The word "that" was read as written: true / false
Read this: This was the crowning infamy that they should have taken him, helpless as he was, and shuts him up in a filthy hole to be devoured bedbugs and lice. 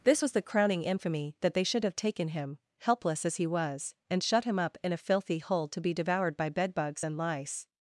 true